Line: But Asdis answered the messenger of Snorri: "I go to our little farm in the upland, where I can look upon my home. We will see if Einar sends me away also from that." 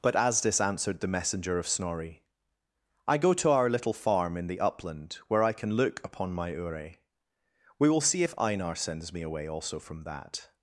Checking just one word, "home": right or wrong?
wrong